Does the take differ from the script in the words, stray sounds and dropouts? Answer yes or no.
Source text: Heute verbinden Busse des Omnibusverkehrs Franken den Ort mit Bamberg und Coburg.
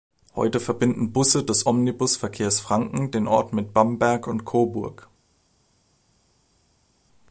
no